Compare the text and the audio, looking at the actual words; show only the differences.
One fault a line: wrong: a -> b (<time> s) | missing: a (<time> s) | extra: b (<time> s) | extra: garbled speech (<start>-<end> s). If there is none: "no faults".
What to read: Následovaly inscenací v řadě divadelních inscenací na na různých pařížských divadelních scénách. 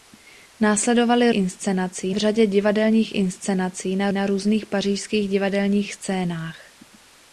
no faults